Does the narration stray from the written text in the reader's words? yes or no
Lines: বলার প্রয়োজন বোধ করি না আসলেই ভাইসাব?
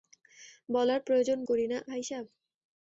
yes